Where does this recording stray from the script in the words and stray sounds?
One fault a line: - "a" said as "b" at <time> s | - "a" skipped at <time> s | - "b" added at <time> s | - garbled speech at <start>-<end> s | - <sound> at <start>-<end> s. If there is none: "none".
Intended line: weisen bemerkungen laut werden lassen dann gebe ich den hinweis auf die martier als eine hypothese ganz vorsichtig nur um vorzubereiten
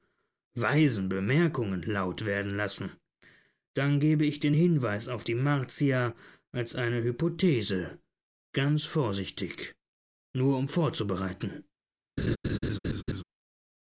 - laugh at 12.2-13.2 s